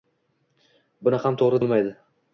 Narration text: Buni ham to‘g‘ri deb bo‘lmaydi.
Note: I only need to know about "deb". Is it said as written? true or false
false